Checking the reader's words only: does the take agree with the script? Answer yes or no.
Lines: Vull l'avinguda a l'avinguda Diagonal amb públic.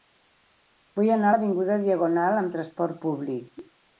no